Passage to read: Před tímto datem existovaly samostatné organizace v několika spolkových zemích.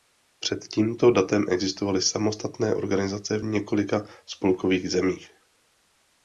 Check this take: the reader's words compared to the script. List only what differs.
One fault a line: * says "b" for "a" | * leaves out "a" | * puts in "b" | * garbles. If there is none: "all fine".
all fine